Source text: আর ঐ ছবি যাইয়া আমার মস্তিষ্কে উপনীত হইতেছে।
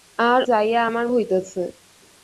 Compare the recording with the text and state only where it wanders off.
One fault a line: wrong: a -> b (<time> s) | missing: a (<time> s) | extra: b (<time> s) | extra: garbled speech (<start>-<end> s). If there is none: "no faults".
missing: ঐ ছবি (0.4 s)
missing: মস্তিষ্কে উপনীত (1.1 s)